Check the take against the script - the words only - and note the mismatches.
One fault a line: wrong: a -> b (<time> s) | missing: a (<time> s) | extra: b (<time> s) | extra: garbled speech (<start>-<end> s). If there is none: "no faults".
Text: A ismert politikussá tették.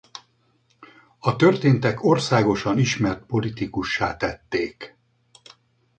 extra: történtek országosan (1.3 s)